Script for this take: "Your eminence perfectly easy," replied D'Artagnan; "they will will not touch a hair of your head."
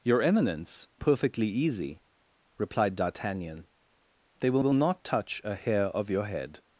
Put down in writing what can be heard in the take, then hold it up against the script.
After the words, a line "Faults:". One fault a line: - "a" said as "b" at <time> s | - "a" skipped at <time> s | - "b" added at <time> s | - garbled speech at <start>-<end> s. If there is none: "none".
"Your eminence perfectly easy," replied D'Artagnan; "they will will not touch a hair of your head."
Faults:
none